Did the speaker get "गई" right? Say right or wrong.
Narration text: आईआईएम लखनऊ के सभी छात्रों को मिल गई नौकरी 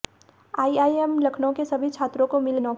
wrong